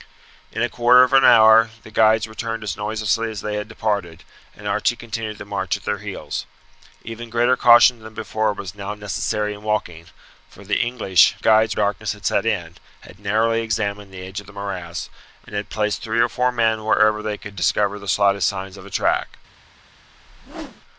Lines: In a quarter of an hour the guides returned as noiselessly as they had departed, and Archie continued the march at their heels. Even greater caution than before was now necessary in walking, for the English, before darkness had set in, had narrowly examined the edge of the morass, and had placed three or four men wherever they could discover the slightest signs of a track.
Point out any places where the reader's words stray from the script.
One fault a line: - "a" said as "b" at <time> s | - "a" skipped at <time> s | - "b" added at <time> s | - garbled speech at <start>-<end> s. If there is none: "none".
- "before" said as "guides" at 11.4 s